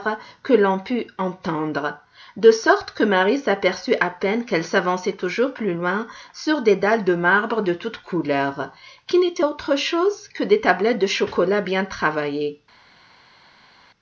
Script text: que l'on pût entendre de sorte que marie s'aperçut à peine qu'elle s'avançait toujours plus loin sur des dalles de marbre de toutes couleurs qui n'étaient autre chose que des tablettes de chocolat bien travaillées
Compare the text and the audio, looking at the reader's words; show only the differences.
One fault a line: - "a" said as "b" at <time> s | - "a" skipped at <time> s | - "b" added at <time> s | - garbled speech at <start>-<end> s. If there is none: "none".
none